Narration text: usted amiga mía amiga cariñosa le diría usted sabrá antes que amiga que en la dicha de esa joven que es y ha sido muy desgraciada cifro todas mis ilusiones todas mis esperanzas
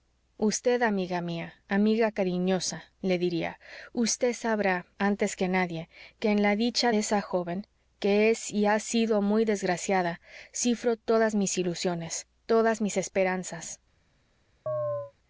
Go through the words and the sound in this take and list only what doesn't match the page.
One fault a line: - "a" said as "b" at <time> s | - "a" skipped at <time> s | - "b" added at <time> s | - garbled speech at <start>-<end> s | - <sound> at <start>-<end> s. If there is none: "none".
- "amiga" said as "nadie" at 5.5 s
- chirp at 14.7-15.1 s